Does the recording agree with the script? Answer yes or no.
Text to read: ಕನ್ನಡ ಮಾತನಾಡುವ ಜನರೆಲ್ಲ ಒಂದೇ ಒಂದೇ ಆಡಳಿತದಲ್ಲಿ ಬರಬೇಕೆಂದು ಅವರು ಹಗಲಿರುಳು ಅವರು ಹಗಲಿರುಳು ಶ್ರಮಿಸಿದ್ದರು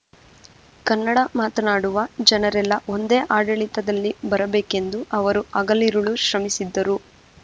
no